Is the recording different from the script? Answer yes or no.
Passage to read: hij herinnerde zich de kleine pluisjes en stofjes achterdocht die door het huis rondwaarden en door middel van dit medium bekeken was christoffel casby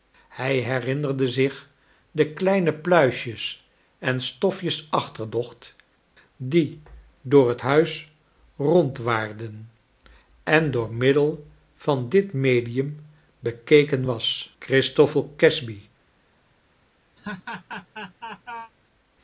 no